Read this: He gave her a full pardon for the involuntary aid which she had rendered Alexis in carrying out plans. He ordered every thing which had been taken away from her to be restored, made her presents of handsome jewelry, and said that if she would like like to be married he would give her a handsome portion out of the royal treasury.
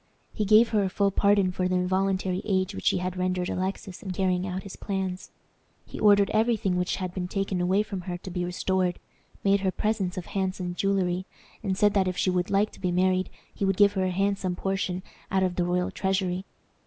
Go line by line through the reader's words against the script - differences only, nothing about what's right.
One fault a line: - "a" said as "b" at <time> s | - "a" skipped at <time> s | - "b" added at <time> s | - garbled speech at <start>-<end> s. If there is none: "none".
- "his" added at 4.6 s
- "like" skipped at 12.7 s